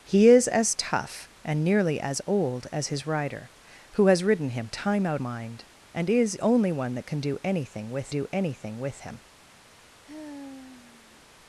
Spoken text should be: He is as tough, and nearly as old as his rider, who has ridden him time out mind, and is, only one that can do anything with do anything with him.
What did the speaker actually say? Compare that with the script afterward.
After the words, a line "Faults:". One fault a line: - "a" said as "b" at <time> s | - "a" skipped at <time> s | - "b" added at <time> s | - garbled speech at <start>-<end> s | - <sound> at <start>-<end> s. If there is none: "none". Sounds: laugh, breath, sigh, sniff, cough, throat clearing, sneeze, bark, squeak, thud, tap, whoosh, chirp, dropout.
He is as tough, and nearly as old as his rider, who has ridden him time out mind, and is, only one that can do anything with do anything with him.
Faults:
- sigh at 10.1-11.2 s